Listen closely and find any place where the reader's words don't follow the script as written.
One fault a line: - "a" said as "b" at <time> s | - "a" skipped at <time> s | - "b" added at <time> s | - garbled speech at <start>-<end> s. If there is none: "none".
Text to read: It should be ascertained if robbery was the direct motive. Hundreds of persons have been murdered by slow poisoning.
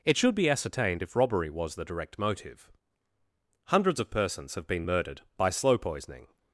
none